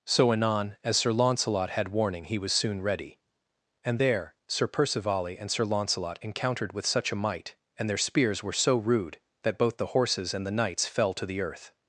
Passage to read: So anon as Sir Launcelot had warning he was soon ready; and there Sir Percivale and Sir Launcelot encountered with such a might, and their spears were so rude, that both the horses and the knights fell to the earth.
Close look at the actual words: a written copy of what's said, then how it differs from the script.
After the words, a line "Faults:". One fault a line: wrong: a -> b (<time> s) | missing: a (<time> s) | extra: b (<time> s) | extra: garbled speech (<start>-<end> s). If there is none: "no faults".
So anon as Sir Launcelot had warning he was soon ready; and there Sir Percivale and Sir Launcelot encountered with such a might, and their spears were so rude, that both the horses and the knights fell to the earth.
Faults:
no faults